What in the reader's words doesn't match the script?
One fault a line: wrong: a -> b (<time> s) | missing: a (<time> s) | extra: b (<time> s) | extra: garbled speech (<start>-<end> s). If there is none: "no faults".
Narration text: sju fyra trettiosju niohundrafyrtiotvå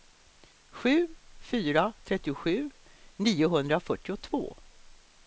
no faults